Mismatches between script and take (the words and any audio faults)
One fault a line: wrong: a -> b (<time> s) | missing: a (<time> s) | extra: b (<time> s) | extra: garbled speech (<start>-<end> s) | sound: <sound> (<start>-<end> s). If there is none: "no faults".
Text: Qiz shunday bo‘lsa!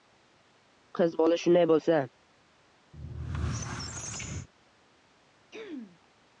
extra: bola (1.2 s)
sound: squeak (2.9-4.5 s)
sound: throat clearing (5.5-6.0 s)